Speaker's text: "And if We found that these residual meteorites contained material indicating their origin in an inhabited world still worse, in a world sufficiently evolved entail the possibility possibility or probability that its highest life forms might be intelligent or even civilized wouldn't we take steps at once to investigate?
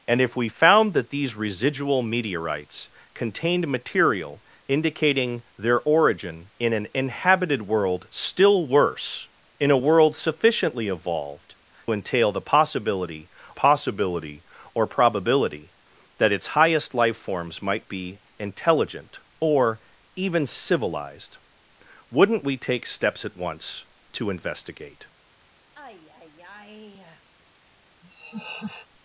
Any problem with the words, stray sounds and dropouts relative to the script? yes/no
yes